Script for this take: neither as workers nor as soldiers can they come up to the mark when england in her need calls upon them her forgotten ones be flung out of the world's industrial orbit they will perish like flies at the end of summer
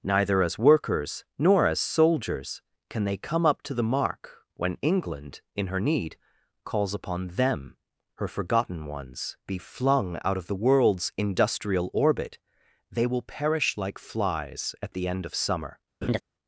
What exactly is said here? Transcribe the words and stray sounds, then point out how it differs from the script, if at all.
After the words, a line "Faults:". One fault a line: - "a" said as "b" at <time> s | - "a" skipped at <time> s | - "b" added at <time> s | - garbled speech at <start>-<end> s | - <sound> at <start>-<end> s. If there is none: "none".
neither as workers nor as soldiers can they come up to the mark when england in her need calls upon them her forgotten ones be flung out of the world's industrial orbit they will perish like flies at the end of summer
Faults:
- laugh at 16.0-16.2 s